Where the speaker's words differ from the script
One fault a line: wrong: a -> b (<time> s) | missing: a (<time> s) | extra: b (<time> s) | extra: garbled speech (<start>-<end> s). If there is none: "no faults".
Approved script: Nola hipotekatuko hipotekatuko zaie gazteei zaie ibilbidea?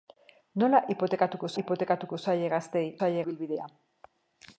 no faults